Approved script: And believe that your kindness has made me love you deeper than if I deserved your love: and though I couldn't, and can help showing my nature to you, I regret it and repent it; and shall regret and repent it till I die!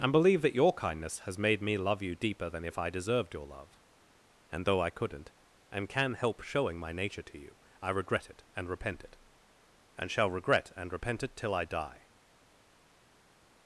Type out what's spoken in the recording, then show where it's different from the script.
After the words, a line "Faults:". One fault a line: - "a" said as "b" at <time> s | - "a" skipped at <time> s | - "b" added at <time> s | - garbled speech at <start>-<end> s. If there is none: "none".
And believe that your kindness has made me love you deeper than if I deserved your love: and though I couldn't, and can help showing my nature to you, I regret it and repent it; and shall regret and repent it till I die!
Faults:
none